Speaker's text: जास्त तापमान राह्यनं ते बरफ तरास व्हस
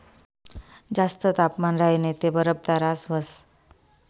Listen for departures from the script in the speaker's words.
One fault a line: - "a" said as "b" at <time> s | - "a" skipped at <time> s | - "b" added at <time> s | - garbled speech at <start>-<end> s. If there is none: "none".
none